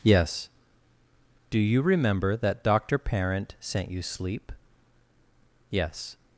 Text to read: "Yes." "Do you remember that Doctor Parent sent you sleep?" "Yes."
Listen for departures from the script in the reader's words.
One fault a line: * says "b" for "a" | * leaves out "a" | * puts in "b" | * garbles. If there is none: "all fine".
all fine